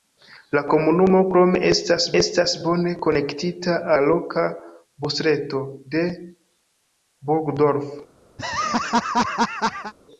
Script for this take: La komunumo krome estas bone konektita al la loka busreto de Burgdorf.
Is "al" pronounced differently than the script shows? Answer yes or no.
yes